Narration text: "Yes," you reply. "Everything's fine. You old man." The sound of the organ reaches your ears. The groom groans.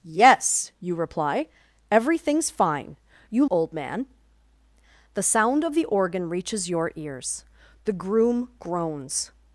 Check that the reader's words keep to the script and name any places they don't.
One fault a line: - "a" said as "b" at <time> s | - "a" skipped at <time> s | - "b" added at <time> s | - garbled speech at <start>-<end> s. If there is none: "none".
none